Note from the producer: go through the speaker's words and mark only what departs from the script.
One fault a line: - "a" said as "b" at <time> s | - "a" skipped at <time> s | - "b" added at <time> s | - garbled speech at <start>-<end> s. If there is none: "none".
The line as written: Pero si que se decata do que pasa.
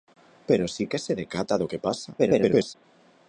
- garbled speech at 2.2-2.8 s